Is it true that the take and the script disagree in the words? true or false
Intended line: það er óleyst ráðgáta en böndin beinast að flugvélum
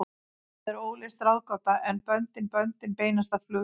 true